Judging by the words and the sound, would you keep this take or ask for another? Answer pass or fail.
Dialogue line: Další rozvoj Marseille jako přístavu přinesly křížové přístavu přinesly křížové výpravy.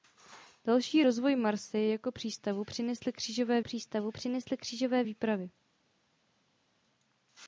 pass